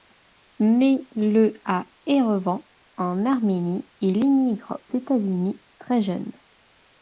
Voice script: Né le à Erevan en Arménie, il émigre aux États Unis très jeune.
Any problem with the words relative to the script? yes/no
yes